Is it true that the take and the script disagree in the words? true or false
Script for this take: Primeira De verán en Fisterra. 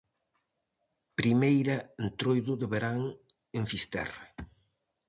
true